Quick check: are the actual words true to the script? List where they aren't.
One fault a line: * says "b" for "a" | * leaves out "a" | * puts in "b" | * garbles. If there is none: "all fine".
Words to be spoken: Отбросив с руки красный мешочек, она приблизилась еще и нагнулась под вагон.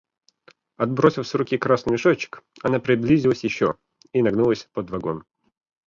all fine